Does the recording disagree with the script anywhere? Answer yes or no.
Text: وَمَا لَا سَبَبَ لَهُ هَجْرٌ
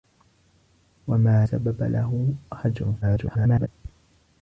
yes